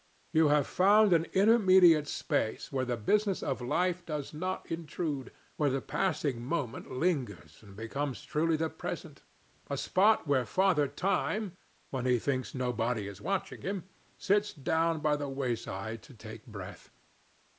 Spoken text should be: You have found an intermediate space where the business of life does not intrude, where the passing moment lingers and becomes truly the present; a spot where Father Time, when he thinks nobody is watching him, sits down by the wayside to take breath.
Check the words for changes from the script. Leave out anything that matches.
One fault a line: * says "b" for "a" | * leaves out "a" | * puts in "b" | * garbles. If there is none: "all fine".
all fine